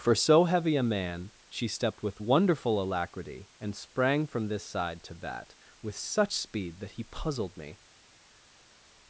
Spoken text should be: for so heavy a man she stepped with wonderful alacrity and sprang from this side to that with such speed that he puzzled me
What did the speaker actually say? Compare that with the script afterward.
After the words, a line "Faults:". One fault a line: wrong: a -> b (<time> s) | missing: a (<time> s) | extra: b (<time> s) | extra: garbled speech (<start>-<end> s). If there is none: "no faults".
for so heavy a man she stepped with wonderful alacrity and sprang from this side to that with such speed that he puzzled me
Faults:
no faults